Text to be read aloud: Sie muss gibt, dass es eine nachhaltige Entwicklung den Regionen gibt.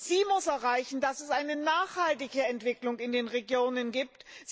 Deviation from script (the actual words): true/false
true